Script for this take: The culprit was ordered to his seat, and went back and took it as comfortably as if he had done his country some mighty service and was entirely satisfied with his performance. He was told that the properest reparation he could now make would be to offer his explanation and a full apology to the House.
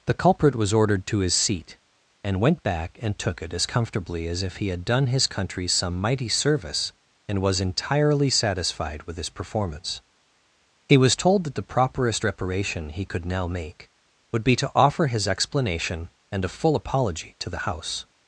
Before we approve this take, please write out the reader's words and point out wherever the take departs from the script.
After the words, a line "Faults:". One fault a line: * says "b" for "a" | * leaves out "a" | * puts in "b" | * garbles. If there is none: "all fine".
The culprit was ordered to his seat, and went back and took it as comfortably as if he had done his country some mighty service and was entirely satisfied with his performance. He was told that the properest reparation he could now make would be to offer his explanation and a full apology to the House.
Faults:
all fine